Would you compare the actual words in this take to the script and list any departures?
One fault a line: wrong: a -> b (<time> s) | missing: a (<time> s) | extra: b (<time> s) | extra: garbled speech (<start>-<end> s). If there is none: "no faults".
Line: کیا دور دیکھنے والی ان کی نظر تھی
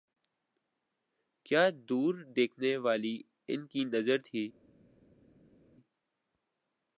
no faults